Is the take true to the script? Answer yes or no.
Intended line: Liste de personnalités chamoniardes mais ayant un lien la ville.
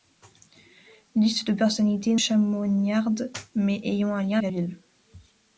yes